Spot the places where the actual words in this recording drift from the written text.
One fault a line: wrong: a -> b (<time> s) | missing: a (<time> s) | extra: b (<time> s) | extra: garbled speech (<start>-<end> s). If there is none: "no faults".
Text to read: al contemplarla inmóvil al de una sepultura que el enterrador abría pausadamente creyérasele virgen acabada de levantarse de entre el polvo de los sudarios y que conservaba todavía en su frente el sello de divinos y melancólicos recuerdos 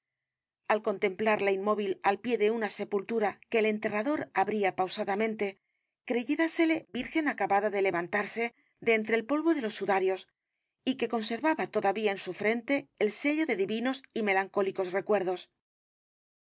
extra: pie (2.2 s)